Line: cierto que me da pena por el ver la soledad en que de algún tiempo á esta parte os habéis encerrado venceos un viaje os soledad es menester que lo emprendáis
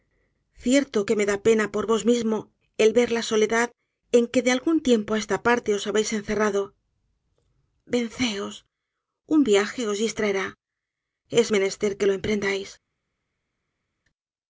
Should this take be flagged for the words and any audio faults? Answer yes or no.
yes